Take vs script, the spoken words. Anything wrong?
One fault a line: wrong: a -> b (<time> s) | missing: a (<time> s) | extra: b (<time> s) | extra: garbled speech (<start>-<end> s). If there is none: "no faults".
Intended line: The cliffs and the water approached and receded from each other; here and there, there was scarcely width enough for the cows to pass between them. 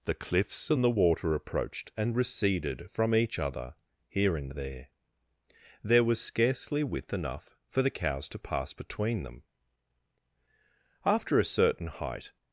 extra: After a certain height (11.0 s)